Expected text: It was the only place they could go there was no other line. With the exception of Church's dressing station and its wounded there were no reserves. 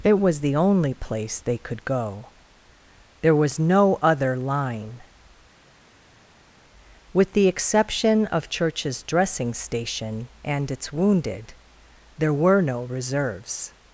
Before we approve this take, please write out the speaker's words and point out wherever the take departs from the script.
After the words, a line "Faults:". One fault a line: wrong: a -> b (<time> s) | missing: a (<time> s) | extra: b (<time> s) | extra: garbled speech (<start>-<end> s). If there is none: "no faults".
It was the only place they could go there was no other line. With the exception of Church's dressing station and its wounded there were no reserves.
Faults:
no faults